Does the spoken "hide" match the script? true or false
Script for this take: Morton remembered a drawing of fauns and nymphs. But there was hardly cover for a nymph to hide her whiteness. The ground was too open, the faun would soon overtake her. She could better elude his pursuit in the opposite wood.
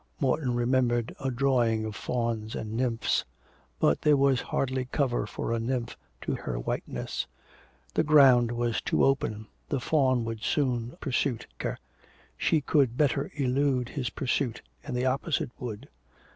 false